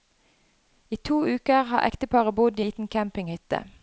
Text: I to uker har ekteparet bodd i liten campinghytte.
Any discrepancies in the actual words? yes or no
no